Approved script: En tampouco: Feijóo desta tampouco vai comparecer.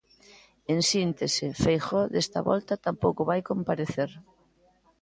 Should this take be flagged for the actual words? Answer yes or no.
yes